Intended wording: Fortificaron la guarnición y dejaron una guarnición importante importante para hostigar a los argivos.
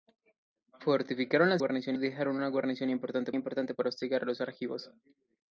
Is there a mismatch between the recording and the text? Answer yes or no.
no